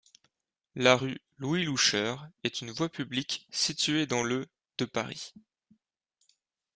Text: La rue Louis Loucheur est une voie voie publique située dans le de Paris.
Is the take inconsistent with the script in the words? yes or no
yes